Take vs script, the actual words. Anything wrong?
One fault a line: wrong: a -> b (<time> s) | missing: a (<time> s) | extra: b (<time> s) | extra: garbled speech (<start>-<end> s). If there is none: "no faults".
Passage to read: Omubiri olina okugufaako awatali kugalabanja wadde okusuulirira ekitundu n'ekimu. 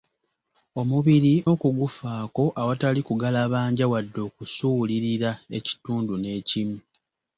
missing: olina (1.3 s)